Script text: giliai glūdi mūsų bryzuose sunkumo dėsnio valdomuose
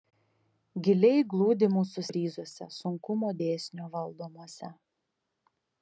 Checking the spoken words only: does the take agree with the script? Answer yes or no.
yes